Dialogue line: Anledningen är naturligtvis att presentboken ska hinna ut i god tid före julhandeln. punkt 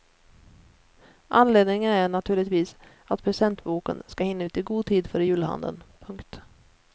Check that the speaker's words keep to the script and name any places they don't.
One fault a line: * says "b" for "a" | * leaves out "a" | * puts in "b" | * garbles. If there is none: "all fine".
all fine